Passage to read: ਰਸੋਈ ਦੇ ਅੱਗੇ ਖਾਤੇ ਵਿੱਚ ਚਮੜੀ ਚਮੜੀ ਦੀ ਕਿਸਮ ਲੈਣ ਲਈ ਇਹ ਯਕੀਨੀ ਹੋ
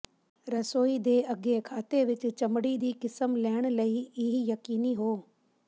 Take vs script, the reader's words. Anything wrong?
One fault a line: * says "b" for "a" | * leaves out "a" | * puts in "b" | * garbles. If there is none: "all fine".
* leaves out "ਚਮੜੀ"